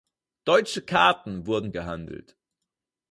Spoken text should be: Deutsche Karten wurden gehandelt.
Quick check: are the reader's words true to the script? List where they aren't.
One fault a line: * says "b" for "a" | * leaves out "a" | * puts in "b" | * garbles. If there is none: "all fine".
all fine